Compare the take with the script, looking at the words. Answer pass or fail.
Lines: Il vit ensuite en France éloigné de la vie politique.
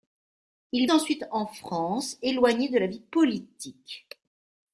fail